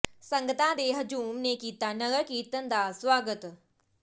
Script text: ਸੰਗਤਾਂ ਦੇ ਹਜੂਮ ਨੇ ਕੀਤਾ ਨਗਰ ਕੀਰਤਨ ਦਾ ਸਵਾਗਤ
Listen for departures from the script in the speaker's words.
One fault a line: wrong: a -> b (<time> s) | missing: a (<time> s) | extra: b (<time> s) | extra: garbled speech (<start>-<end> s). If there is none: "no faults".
no faults